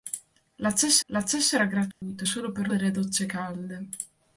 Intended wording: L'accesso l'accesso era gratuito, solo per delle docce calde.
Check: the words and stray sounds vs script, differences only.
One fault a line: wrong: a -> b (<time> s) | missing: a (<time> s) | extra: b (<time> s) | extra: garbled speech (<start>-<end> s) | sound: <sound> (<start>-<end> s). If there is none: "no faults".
sound: dropout (1.9-2.0 s)